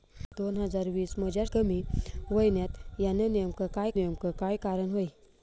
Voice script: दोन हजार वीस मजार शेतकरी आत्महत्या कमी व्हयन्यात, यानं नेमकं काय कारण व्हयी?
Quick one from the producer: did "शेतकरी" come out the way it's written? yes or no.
no